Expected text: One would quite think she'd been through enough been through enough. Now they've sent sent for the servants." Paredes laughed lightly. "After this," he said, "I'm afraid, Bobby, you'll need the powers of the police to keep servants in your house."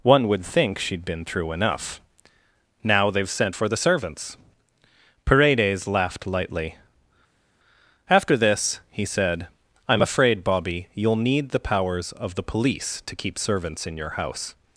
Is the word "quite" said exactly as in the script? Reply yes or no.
no